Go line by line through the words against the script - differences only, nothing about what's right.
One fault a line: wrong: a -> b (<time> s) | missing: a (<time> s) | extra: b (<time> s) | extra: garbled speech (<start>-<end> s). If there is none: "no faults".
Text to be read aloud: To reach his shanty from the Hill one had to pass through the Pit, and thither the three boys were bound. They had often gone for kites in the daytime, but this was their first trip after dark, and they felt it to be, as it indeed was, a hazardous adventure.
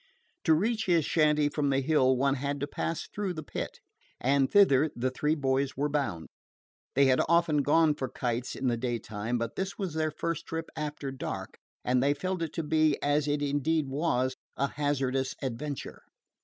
no faults